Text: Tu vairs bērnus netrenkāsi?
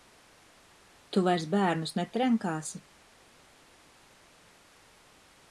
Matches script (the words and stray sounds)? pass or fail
pass